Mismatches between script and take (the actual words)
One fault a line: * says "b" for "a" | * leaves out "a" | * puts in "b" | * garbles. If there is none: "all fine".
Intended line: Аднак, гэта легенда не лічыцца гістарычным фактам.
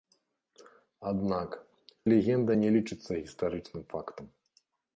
* leaves out "гэта"